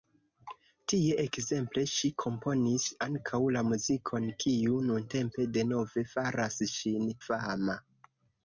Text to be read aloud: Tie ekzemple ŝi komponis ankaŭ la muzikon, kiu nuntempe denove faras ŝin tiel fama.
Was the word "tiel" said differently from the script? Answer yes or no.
yes